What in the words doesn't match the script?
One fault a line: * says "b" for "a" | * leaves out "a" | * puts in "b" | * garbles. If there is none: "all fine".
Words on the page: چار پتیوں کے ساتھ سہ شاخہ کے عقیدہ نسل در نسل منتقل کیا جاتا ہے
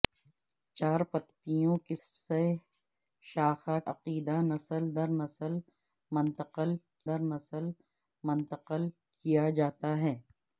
* leaves out "ساتھ"
* leaves out "کے"
* puts in "در نسل منتقل"